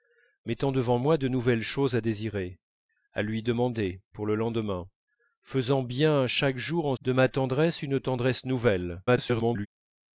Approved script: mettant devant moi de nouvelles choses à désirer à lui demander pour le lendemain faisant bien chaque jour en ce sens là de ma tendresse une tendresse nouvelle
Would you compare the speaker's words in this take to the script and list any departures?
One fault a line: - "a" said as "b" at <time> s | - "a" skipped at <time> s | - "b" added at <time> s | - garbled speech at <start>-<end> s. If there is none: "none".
- "ce sens là" skipped at 7.0 s
- garbled speech at 9.1-9.7 s